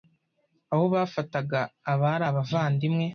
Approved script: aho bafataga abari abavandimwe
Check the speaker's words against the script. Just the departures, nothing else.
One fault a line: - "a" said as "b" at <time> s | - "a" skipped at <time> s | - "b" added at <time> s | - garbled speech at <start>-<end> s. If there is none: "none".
none